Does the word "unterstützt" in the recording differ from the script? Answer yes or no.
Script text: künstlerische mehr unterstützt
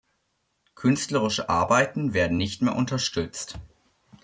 no